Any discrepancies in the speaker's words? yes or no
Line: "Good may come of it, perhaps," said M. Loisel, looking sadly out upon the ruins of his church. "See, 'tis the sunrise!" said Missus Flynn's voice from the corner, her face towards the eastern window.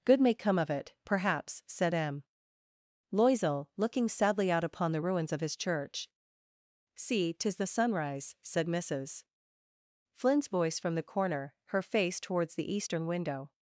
no